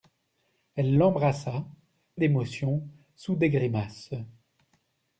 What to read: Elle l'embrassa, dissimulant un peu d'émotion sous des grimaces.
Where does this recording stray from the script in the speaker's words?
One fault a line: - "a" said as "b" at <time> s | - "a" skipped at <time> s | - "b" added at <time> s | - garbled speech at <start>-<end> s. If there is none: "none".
- "dissimulant un peu" skipped at 1.7 s